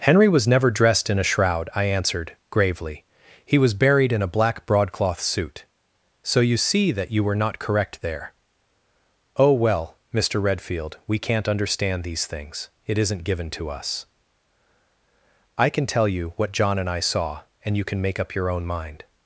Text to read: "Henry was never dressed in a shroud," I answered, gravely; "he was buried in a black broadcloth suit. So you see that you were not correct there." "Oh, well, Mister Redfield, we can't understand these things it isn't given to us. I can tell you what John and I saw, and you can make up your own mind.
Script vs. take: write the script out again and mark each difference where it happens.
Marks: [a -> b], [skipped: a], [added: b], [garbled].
"Henry was never dressed in a shroud," I answered, gravely; "he was buried in a black broadcloth suit. So you see that you were not correct there." "Oh, well, Mister Redfield, we can't understand these things it isn't given to us. I can tell you what John and I saw, and you can make up your own mind.